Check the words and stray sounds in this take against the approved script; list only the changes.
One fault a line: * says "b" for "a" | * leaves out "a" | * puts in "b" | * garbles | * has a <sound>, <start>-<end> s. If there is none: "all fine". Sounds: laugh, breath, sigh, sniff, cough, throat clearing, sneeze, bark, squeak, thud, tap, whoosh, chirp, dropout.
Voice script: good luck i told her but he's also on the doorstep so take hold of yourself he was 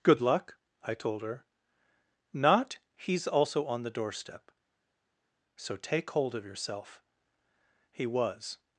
* says "not" for "but"